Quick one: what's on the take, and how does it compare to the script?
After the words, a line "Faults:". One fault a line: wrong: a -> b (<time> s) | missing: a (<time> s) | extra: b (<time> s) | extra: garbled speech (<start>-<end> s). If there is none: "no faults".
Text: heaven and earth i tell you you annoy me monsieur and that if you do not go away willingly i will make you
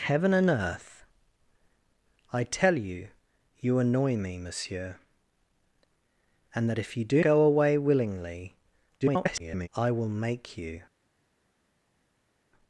heaven and earth i tell you you annoy me monsieur and that if you do go away willingly [garbled] i will make you
Faults:
missing: not (7.2 s)
extra: garbled speech (9.0-9.7 s)